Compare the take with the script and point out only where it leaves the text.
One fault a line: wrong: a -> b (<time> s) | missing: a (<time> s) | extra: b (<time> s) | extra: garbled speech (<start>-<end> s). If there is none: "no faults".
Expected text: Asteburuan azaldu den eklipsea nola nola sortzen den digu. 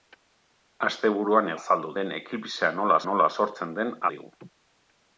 no faults